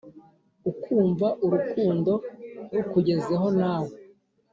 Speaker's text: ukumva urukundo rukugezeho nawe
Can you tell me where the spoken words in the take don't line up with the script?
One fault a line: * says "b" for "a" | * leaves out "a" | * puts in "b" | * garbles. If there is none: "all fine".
all fine